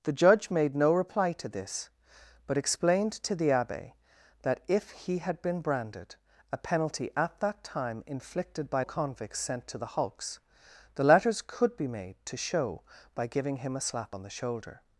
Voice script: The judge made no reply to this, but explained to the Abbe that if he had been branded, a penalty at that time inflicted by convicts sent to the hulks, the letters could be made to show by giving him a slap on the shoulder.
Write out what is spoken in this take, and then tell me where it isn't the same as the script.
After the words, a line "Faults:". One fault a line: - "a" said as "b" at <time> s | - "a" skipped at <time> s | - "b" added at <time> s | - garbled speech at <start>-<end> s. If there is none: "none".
The judge made no reply to this, but explained to the Abbe that if he had been branded, a penalty at that time inflicted by convicts sent to the hulks, the letters could be made to show by giving him a slap on the shoulder.
Faults:
none